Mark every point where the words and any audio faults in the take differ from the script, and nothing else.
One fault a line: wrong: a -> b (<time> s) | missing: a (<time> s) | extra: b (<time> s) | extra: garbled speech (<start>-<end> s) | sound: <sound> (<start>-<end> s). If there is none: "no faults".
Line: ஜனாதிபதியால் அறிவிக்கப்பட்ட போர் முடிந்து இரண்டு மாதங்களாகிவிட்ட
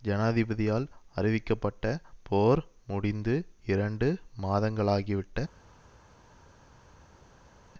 no faults